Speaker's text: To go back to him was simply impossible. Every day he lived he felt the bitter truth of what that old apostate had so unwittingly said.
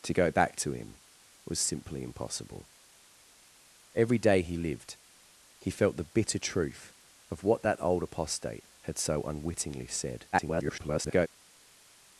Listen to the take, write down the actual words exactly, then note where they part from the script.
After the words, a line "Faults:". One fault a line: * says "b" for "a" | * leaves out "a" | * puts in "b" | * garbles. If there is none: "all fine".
To go back to him was simply impossible. Every day he lived he felt the bitter truth of what that old apostate had so unwittingly said. [garbled]
Faults:
* garbles